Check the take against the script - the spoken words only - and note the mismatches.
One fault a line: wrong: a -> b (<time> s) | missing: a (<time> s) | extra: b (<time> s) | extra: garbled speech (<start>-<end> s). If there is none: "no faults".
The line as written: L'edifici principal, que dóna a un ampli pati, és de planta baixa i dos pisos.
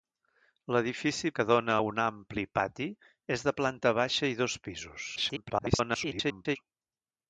missing: principal (1.3 s)
extra: garbled speech (5.2-6.6 s)